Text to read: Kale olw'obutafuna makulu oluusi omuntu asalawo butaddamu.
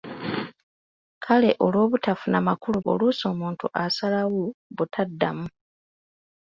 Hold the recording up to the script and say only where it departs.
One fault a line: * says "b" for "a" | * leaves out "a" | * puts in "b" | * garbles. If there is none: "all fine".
all fine